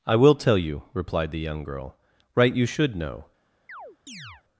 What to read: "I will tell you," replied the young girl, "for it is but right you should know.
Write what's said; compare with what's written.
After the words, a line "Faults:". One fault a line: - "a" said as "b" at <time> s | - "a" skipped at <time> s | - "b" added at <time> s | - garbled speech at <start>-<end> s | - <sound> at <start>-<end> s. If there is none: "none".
"I will tell you," replied the young girl, "right you should know.
Faults:
- "for it is but" skipped at 2.0 s
- chirp at 3.7-4.4 s